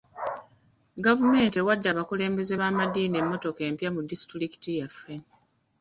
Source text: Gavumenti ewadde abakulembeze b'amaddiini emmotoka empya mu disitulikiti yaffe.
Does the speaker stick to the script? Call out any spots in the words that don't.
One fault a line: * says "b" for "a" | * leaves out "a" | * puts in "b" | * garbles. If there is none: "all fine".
all fine